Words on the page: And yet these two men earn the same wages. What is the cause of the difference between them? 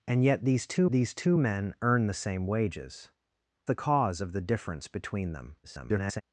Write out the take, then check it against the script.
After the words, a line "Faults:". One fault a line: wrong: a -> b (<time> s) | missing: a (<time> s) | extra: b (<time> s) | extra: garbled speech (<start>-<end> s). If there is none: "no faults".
And yet these two these two men earn the same wages. The cause of the difference between them? [garbled]
Faults:
extra: these two (0.9 s)
missing: What is (3.1 s)
extra: garbled speech (5.6-6.2 s)